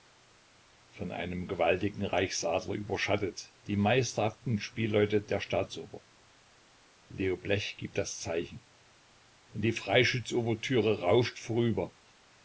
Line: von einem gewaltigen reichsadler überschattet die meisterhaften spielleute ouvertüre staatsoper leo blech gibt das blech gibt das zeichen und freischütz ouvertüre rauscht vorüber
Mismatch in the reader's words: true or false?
true